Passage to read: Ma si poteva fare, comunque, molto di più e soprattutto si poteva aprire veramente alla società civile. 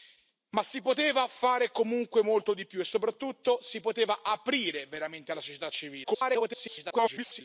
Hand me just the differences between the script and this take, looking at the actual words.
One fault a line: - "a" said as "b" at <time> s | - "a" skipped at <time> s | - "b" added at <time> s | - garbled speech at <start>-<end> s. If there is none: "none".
- garbled speech at 6.0-7.4 s